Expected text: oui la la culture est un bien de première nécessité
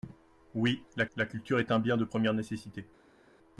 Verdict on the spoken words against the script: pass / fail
pass